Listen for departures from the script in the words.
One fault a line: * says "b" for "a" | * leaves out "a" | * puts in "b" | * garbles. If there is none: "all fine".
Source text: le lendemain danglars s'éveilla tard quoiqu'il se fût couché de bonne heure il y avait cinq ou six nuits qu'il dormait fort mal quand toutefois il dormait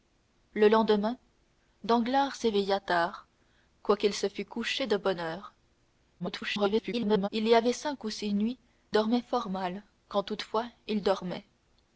* garbles
* leaves out "qu'il"